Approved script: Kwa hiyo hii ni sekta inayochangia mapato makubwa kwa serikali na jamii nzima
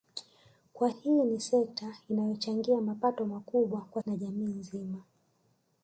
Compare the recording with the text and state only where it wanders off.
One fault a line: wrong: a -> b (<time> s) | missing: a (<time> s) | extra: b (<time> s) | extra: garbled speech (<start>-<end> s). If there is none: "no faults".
missing: hiyo (0.9 s)
missing: serikali (4.0 s)